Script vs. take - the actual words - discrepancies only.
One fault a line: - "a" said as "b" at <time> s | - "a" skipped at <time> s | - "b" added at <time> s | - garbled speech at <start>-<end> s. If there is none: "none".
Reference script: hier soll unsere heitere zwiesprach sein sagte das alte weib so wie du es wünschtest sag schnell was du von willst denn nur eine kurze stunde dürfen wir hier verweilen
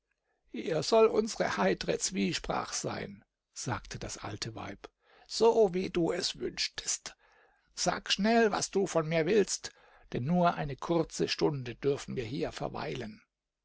- "mir" added at 9.1 s